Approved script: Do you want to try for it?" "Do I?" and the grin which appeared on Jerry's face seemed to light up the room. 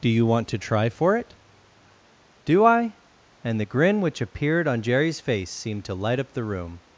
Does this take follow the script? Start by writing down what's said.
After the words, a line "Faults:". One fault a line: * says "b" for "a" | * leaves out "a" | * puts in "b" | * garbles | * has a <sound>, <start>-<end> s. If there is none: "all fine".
Do you want to try for it?" "Do I?" and the grin which appeared on Jerry's face seemed to light up the room.
Faults:
all fine